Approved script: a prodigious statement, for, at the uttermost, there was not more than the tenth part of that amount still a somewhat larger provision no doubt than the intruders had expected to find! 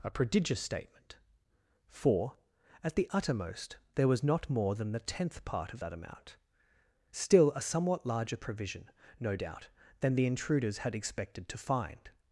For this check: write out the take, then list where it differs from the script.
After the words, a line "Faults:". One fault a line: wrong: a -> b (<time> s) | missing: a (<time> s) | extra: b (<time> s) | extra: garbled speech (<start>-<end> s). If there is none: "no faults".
a prodigious statement, for, at the uttermost, there was not more than the tenth part of that amount still a somewhat larger provision no doubt than the intruders had expected to find!
Faults:
no faults